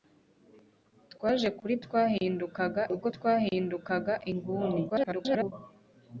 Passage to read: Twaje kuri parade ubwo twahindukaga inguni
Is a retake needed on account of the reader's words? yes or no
yes